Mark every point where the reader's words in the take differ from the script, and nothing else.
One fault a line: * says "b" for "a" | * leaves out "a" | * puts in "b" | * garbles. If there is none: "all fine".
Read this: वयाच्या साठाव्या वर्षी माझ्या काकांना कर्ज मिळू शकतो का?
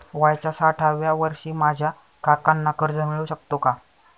all fine